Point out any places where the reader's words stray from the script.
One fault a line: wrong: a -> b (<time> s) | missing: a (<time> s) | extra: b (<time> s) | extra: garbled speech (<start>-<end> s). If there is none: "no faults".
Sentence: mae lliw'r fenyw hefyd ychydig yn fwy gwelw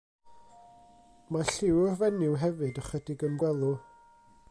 missing: fwy (3.4 s)